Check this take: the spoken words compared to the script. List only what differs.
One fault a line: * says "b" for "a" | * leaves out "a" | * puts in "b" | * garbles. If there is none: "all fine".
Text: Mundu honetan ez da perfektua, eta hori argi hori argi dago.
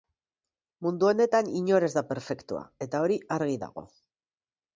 * puts in "inor"
* leaves out "hori argi"